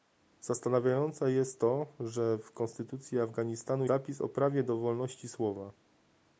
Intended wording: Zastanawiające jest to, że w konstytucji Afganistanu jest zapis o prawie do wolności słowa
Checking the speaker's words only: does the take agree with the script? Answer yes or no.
no